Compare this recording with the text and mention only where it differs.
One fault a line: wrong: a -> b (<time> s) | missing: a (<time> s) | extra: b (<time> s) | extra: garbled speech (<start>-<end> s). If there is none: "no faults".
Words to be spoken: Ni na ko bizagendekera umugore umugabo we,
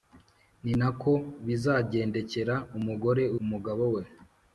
no faults